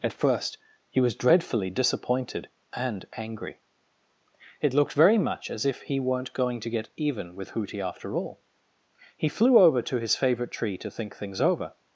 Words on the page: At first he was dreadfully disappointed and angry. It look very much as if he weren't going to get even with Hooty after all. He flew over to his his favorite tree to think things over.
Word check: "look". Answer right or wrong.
wrong